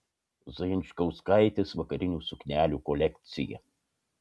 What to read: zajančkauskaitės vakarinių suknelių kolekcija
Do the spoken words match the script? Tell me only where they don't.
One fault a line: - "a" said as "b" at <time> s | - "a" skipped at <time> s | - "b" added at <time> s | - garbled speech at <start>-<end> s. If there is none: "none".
none